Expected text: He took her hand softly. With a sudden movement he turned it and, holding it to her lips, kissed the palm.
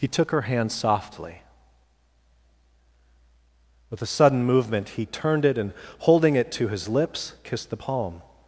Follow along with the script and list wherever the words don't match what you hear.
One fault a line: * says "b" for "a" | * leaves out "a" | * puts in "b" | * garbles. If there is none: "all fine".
* says "his" for "her"